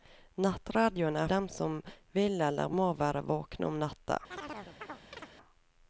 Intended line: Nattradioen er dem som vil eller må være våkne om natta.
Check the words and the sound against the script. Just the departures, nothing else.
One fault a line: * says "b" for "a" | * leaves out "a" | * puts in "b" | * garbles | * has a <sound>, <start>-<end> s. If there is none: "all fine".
* has a chirp, 4.3-5.3 s